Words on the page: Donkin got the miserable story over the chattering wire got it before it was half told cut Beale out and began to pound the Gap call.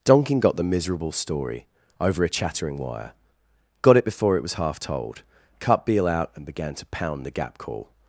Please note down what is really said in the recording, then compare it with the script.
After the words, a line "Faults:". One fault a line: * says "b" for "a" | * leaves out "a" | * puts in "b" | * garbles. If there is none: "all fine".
Donkin got the miserable story over a chattering wire got it before it was half told cut Beale out and began to pound the Gap call.
Faults:
* says "a" for "the"